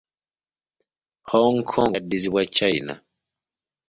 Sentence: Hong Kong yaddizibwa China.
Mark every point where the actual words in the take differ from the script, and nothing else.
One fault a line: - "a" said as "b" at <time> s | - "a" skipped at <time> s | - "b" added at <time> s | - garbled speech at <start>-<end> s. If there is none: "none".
none